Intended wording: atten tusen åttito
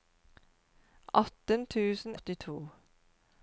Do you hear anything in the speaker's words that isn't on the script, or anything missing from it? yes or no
no